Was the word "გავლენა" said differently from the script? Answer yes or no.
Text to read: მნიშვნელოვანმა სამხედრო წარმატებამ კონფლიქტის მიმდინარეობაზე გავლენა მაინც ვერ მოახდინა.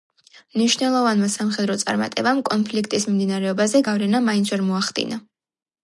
no